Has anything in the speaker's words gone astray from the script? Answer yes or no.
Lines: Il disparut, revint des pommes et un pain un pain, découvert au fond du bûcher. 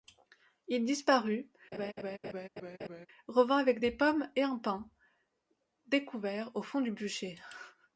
yes